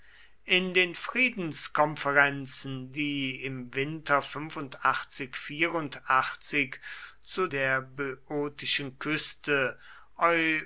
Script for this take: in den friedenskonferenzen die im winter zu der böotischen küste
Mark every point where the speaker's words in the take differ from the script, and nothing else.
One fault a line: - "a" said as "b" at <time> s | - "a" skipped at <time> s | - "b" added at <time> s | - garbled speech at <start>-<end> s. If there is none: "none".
none